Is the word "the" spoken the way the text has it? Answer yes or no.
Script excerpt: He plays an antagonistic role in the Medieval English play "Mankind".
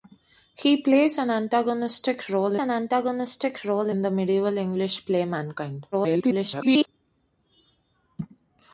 yes